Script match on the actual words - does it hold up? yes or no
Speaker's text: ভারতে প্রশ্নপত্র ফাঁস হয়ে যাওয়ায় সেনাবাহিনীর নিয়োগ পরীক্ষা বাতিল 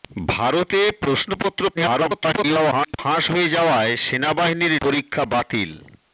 no